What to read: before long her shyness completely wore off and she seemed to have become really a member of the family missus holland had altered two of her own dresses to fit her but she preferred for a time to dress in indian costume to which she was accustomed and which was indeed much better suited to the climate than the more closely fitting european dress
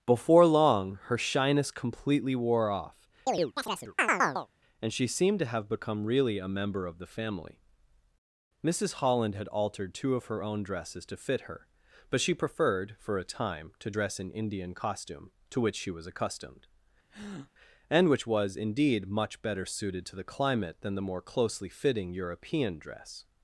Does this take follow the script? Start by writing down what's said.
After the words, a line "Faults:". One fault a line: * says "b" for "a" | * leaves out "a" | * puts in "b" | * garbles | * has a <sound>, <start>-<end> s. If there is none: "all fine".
before long her shyness completely wore off and she seemed to have become really a member of the family missus holland had altered two of her own dresses to fit her but she preferred for a time to dress in indian costume to which she was accustomed and which was indeed much better suited to the climate than the more closely fitting european dress
Faults:
* has a chirp, 3.3-4.5 s
* has a breath, 17.1-17.5 s